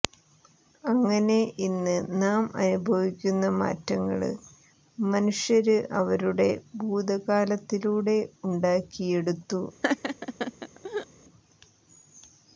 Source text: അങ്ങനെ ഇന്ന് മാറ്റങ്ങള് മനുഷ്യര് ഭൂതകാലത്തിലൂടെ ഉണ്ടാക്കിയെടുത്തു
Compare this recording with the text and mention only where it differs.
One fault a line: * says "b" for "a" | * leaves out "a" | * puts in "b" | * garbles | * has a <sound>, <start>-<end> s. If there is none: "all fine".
* puts in "നാം അനുഭവിക്കുന്ന"
* puts in "അവരുടെ"
* has a laugh, 9.8-11.1 s